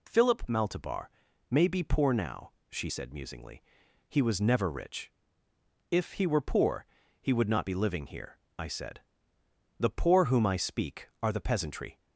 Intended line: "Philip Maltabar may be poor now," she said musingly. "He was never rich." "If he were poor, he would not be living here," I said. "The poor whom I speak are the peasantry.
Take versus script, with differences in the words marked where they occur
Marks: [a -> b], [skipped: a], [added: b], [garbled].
"Philip Maltabar may be poor now," she said musingly. "He was never rich." "If he were poor, he would not be living here," I said. "The poor whom I speak are the peasantry.